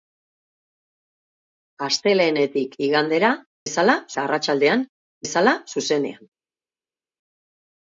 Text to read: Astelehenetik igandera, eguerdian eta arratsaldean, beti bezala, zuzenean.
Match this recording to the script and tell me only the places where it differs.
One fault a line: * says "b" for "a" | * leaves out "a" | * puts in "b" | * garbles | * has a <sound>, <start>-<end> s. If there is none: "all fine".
* says "bezala" for "eguerdian"
* leaves out "beti"